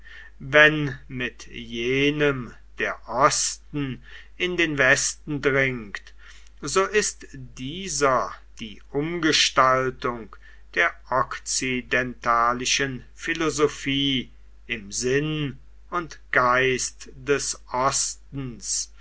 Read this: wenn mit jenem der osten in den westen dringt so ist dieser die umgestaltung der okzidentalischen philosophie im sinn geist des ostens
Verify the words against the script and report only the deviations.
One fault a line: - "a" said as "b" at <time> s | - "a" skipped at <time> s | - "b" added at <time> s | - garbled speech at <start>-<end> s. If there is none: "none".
- "und" added at 15.9 s